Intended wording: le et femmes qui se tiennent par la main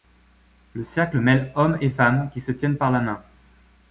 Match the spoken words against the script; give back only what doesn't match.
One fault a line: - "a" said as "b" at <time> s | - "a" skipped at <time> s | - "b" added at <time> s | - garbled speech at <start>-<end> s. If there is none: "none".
- "cercle mêle hommes" added at 0.8 s